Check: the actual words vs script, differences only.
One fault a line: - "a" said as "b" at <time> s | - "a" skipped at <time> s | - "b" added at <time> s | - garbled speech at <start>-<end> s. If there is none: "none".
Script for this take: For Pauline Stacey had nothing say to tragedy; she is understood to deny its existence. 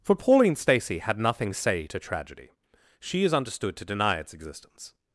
none